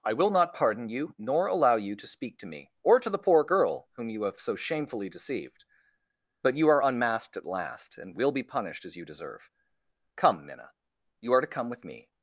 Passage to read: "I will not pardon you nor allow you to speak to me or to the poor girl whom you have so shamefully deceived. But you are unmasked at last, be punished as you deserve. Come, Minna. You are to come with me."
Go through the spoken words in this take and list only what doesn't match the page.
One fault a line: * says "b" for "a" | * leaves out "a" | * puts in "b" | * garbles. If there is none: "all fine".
* puts in "and will"